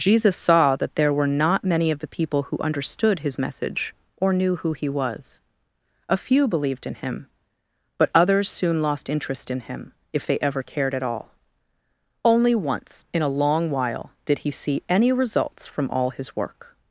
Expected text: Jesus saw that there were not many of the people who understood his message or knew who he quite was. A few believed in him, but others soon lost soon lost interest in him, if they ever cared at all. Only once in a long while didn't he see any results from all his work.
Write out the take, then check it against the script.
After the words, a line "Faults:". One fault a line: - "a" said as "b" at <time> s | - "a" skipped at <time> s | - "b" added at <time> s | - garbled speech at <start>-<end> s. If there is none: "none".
Jesus saw that there were not many of the people who understood his message or knew who he was. A few believed in him, but others soon lost interest in him, if they ever cared at all. Only once in a long while did he see any results from all his work.
Faults:
- "quite" skipped at 4.9 s
- "soon lost" skipped at 9.1 s
- "didn't" said as "did" at 14.2 s